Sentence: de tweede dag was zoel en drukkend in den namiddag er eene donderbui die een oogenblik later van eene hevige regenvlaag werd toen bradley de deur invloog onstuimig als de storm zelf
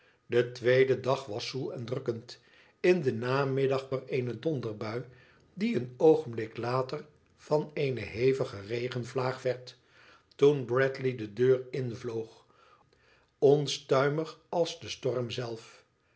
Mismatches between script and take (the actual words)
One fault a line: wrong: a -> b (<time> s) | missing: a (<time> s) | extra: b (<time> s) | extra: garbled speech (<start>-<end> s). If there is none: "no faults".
no faults